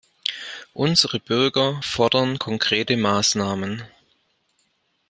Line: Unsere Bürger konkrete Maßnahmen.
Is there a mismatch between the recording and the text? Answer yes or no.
yes